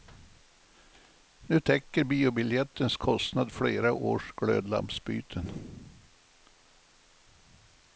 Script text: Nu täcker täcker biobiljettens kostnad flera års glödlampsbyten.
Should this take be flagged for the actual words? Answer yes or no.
yes